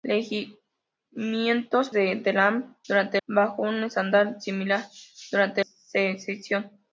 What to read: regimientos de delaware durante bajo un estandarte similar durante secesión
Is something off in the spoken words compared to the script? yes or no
no